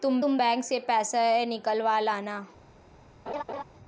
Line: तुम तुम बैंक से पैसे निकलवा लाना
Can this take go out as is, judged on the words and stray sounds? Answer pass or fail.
fail